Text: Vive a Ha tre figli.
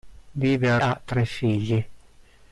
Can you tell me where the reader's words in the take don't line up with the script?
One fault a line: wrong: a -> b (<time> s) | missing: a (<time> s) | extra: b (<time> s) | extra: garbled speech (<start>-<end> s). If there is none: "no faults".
no faults